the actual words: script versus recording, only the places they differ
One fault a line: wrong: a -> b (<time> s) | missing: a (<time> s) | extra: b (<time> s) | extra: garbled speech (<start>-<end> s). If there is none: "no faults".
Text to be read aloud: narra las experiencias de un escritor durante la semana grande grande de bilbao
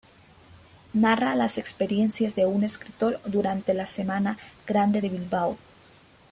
missing: grande (5.0 s)